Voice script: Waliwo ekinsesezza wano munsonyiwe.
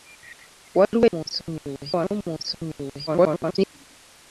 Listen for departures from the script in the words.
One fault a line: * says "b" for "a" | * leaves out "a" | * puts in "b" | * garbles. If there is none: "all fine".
* says "munsonyiwe" for "ekinsesezza"
* garbles